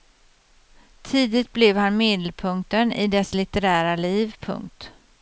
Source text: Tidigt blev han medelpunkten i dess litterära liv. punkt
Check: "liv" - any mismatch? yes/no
no